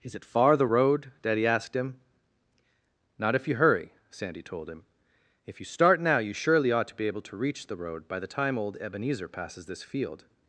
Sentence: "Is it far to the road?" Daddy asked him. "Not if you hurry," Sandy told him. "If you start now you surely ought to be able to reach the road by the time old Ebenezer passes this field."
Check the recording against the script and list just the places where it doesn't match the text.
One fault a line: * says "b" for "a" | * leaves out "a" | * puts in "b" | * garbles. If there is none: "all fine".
* leaves out "to"